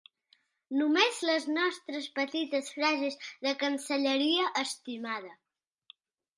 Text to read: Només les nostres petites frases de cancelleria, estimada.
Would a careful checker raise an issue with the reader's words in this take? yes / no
no